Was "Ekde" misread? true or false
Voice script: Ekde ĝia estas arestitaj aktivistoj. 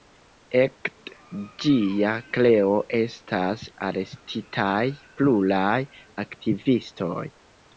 false